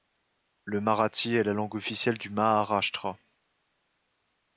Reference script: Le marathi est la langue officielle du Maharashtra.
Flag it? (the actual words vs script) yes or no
no